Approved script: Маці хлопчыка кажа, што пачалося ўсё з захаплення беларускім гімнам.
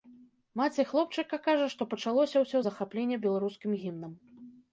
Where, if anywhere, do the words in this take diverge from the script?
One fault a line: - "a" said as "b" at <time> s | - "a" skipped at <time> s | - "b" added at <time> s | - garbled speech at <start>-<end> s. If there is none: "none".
none